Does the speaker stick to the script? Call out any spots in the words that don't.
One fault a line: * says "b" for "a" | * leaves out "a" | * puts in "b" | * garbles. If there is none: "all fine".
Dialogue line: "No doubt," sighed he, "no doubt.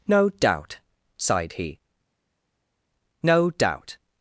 all fine